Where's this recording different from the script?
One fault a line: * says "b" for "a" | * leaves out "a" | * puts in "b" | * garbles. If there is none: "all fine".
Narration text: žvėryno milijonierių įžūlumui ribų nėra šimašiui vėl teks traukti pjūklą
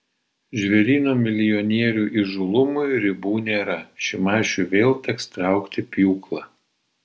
all fine